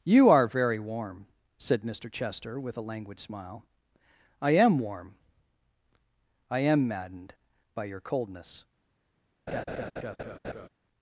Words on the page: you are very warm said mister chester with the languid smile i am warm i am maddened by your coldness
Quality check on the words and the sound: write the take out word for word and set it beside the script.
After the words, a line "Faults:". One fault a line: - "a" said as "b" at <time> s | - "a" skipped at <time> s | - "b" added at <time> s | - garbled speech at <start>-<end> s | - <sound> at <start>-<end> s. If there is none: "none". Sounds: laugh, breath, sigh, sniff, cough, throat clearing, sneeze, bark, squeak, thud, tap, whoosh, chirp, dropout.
you are very warm said mister chester with a languid smile i am warm i am maddened by your coldness
Faults:
- "the" said as "a" at 2.8 s
- laugh at 9.5-10.7 s